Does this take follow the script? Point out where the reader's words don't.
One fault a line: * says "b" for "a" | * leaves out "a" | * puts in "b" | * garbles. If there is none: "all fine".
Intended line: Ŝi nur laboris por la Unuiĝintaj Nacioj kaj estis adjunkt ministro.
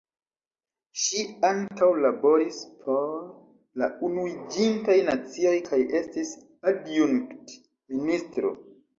* says "ankaŭ" for "nur"